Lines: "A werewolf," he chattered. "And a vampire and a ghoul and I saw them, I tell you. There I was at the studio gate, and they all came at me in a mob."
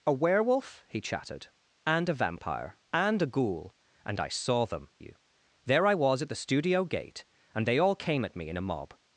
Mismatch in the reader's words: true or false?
true